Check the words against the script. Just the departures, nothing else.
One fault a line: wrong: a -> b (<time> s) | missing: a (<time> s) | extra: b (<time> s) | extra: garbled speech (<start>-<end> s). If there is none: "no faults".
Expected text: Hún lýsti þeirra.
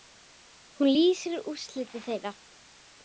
extra: útliti (1.5 s)